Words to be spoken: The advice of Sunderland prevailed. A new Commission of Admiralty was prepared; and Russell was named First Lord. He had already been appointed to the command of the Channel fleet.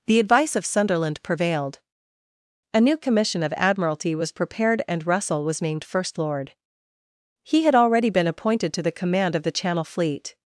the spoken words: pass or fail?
pass